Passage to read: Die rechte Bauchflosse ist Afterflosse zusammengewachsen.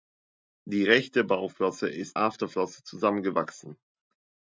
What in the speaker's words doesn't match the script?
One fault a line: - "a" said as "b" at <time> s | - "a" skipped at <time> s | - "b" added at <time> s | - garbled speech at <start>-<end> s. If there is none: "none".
none